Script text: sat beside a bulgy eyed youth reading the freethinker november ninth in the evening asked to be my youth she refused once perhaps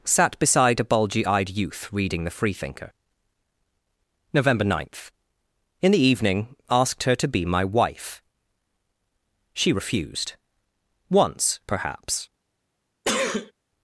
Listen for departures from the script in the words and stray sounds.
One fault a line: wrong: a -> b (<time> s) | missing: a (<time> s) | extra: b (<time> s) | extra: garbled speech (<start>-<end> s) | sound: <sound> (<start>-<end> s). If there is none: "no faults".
extra: her (7.0 s)
wrong: youth -> wife (7.6 s)
sound: sneeze (13.0-13.5 s)